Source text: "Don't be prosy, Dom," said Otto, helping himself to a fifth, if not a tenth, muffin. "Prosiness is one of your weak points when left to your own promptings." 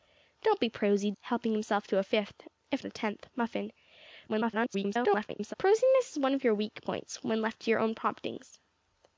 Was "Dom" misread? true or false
true